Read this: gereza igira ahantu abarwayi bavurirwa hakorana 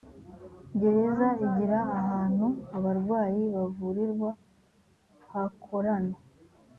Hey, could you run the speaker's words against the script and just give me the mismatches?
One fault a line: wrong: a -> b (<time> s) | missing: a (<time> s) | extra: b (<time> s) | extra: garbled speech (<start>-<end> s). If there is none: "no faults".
no faults